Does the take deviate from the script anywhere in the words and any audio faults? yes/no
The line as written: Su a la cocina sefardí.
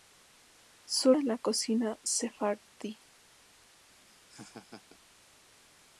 yes